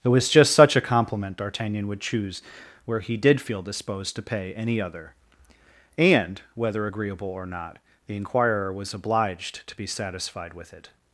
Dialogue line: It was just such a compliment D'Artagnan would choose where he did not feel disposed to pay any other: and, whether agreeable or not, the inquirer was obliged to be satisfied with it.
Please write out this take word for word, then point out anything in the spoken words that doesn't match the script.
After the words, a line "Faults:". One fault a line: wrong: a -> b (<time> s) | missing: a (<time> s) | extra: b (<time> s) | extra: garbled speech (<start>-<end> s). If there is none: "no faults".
It was just such a compliment D'Artagnan would choose where he did feel disposed to pay any other: and, whether agreeable or not, the inquirer was obliged to be satisfied with it.
Faults:
missing: not (3.4 s)